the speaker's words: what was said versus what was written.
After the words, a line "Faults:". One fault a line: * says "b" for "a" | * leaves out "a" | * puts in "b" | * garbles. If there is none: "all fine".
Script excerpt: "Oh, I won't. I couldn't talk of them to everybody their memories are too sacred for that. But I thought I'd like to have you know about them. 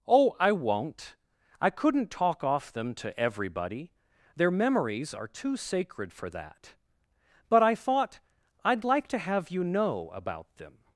"Oh, I won't. I couldn't talk off them to everybody their memories are too sacred for that. But I thought I'd like to have you know about them.
Faults:
* says "off" for "of"